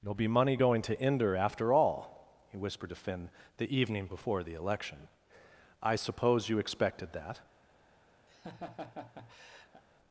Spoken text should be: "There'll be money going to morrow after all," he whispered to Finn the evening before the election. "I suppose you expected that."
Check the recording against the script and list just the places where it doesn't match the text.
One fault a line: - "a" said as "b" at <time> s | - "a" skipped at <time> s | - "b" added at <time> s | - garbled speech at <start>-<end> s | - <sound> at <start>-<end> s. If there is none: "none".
- "morrow" said as "inder" at 0.9 s
- laugh at 8.3-9.8 s